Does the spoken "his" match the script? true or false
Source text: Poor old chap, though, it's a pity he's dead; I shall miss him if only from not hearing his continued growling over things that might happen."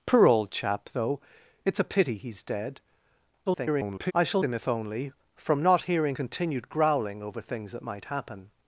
false